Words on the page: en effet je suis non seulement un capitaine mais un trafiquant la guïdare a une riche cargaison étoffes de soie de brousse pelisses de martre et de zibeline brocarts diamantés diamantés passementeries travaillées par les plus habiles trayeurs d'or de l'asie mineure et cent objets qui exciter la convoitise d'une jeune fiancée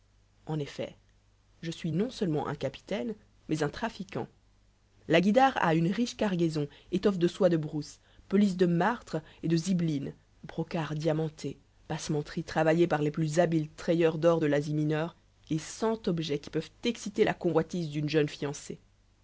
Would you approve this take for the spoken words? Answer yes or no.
no